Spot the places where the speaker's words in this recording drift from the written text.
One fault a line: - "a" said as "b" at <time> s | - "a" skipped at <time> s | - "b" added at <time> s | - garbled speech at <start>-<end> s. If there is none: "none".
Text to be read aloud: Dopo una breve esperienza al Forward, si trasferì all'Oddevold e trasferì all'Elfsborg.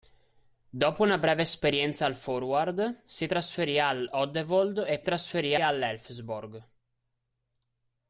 none